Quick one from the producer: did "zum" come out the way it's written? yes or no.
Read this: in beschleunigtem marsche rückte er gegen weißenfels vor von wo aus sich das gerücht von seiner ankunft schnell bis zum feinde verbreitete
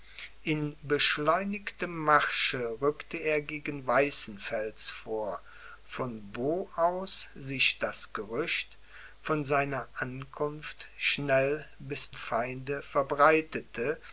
no